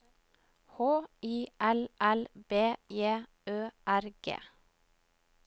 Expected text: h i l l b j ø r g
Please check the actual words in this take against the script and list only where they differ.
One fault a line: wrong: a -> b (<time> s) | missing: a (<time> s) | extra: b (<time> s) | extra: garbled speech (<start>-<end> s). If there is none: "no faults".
no faults